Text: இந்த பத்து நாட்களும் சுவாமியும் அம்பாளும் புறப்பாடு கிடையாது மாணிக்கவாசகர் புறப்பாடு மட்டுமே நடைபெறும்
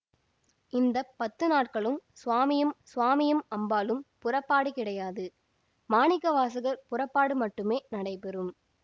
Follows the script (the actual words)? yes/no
no